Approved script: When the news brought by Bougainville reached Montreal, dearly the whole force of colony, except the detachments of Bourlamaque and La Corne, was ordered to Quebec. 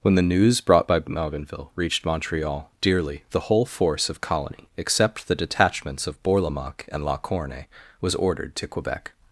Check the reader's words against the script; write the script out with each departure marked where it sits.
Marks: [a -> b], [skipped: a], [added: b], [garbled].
When the news brought by Bougainville reached Montreal, dearly the whole force of colony, except the detachments of Bourlamaque and La Corne, was ordered to Quebec.